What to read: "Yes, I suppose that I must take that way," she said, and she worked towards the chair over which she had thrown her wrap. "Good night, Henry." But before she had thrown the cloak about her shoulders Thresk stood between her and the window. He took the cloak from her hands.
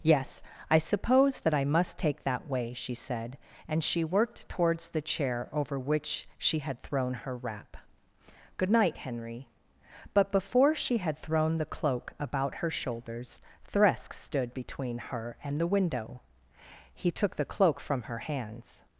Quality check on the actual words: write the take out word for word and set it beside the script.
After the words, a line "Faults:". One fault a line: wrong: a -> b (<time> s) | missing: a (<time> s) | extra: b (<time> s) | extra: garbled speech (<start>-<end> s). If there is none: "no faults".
"Yes, I suppose that I must take that way," she said, and she worked towards the chair over which she had thrown her wrap. "Good night, Henry." But before she had thrown the cloak about her shoulders Thresk stood between her and the window. He took the cloak from her hands.
Faults:
no faults